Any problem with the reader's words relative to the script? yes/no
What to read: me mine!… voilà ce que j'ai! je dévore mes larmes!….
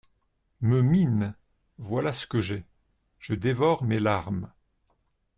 no